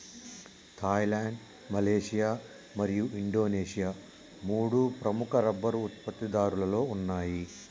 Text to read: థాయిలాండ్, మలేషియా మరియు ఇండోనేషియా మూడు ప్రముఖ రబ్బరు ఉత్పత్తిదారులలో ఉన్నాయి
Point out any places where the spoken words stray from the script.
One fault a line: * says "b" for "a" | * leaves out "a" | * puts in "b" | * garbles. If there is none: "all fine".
all fine